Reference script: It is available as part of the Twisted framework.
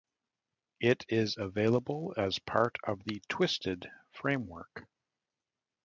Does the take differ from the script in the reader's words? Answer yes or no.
no